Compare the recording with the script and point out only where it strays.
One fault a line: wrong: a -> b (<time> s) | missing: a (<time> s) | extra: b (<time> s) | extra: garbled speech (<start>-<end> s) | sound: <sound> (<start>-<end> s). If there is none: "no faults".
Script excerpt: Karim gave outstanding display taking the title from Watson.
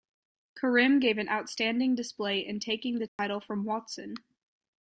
extra: an (1.2 s)
extra: in (2.4 s)
sound: dropout (3.1-3.2 s)